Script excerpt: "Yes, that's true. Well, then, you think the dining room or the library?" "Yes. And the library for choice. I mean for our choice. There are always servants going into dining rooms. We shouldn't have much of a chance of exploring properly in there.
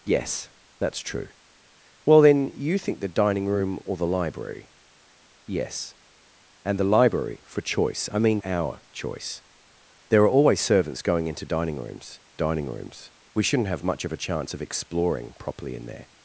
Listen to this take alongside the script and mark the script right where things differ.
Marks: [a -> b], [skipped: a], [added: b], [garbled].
"Yes, that's true. Well, then, you think the dining room or the library?" "Yes. And the library for choice. I mean [skipped: for] our choice. There are always servants going into dining rooms. [added: dining rooms] We shouldn't have much of a chance of exploring properly in there.